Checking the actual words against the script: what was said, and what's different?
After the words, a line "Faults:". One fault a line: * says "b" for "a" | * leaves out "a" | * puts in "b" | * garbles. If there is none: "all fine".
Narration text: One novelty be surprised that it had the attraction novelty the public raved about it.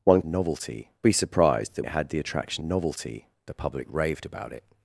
One novelty be surprised that it had the attraction novelty the public raved about it.
Faults:
all fine